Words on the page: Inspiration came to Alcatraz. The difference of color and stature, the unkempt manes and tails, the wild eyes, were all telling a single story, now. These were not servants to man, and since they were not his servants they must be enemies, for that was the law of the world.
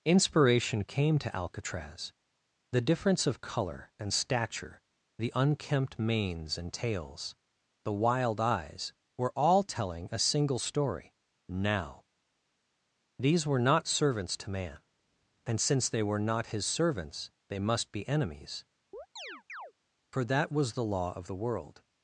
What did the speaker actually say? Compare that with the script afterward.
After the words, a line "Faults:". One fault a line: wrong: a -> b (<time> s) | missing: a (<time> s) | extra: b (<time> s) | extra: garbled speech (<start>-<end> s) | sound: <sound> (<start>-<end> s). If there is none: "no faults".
Inspiration came to Alcatraz. The difference of color and stature, the unkempt manes and tails, the wild eyes, were all telling a single story, now. These were not servants to man, and since they were not his servants they must be enemies, for that was the law of the world.
Faults:
sound: chirp (18.9-19.7 s)